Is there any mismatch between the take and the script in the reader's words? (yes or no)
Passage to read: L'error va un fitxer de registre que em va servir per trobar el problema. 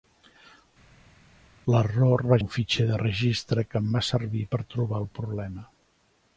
no